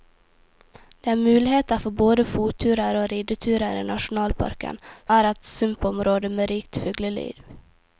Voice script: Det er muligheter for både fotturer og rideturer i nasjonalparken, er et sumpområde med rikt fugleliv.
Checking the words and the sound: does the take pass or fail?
pass